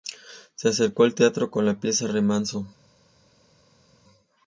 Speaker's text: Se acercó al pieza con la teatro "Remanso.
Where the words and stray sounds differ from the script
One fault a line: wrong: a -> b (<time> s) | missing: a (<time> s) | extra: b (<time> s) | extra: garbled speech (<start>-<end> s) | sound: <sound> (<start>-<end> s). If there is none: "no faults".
wrong: pieza -> teatro (1.1 s)
wrong: teatro -> pieza (1.8 s)